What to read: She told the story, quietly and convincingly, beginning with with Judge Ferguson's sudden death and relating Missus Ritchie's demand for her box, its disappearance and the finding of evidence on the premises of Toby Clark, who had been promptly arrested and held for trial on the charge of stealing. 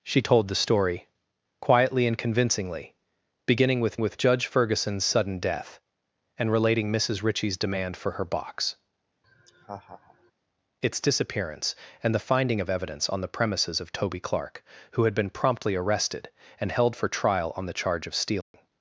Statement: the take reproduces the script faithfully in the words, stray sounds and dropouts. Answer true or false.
false